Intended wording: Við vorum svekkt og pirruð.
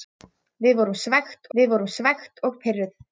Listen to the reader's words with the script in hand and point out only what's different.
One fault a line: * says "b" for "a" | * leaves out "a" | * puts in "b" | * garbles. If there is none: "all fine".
* puts in "við vorum svekkt"